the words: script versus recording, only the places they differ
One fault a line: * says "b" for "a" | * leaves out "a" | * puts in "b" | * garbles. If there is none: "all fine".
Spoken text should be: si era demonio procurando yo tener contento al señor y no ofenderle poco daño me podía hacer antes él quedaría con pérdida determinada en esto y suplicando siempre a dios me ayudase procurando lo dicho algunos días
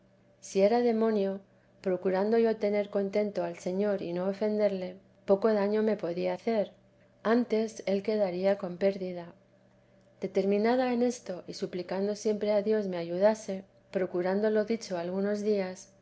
all fine